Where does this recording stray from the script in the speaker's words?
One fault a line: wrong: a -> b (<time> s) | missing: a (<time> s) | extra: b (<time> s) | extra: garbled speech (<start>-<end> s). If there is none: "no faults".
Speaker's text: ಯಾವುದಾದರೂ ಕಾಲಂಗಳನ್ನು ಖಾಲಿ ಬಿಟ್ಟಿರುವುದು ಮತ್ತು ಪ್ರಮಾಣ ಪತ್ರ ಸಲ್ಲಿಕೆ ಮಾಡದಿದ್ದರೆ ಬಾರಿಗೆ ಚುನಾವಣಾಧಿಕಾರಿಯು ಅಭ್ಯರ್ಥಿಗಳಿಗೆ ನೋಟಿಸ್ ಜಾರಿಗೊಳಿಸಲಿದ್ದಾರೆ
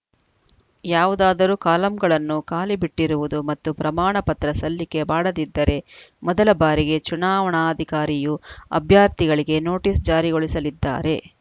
extra: ಮೊದಲ (6.2 s)